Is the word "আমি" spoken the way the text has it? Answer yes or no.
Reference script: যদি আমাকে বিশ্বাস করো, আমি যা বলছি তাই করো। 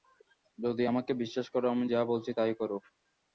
yes